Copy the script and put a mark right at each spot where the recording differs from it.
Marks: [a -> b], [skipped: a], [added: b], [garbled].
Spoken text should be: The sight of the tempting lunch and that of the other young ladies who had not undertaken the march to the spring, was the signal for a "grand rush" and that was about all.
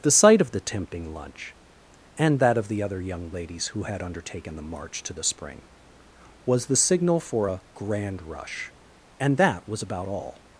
The sight of the tempting lunch and that of the other young ladies who had [skipped: not] undertaken the march to the spring, was the signal for a "grand rush" and that was about all.